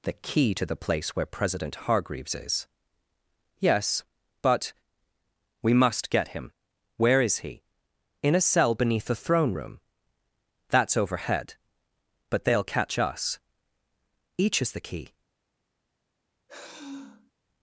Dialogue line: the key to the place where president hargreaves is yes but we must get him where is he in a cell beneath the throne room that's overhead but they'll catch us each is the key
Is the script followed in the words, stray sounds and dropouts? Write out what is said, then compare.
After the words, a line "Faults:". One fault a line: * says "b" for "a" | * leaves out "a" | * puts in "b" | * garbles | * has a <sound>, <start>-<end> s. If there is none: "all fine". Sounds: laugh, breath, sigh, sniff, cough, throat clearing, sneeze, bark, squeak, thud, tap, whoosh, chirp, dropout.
the key to the place where president hargreaves is yes but we must get him where is he in a cell beneath the throne room that's overhead but they'll catch us each is the key
Faults:
* has a sigh, 16.5-17.3 s